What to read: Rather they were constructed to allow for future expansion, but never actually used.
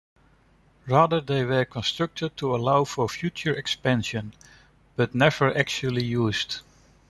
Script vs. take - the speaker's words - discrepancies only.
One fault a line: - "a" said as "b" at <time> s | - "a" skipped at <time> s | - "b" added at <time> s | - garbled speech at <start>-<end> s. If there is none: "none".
none